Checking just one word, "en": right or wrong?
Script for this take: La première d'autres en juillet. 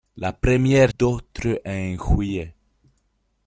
right